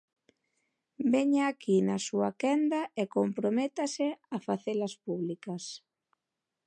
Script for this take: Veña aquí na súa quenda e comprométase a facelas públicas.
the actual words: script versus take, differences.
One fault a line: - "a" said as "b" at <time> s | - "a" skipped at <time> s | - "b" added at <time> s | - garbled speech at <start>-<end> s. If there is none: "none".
none